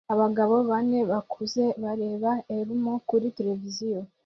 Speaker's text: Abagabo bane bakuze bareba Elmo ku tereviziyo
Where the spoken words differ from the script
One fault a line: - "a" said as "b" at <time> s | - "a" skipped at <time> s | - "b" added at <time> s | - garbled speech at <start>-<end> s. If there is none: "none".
- "ku" said as "kuri" at 3.1 s